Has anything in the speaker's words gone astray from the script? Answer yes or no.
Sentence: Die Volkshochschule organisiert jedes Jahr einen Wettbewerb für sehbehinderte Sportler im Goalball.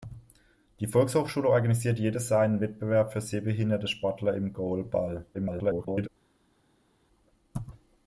yes